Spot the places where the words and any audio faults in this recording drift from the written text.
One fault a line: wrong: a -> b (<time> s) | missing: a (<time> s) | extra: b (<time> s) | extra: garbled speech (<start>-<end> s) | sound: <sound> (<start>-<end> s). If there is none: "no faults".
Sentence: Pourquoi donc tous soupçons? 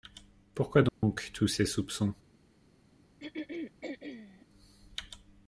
sound: dropout (0.9-1.0 s)
extra: ces (1.5 s)
sound: throat clearing (3.2-4.5 s)